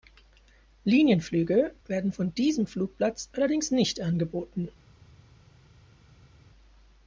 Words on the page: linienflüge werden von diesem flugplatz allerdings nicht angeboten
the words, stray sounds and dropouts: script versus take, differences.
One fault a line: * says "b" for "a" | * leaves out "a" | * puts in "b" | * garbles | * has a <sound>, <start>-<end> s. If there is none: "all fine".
all fine